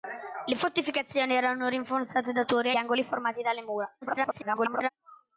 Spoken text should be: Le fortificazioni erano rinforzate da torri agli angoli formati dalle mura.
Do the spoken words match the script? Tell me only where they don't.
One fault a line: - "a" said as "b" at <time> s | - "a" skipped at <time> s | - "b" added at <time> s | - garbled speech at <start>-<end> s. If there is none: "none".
- "agli" skipped at 2.7 s
- garbled speech at 4.0-4.9 s